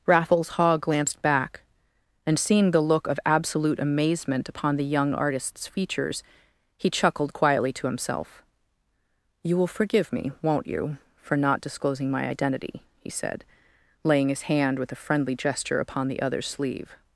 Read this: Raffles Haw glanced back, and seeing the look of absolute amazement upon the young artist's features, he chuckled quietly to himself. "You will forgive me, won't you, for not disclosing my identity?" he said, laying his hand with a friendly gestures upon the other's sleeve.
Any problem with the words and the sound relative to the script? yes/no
yes